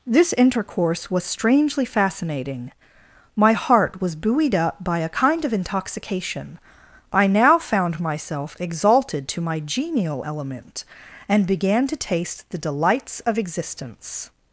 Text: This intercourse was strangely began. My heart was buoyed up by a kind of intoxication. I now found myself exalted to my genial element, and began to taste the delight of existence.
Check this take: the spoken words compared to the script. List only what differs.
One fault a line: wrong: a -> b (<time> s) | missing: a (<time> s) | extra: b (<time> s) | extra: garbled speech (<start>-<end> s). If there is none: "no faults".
wrong: began -> fascinating (1.9 s)
wrong: delight -> delights (12.6 s)